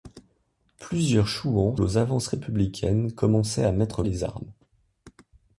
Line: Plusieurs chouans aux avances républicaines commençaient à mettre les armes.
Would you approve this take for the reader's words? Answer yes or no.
yes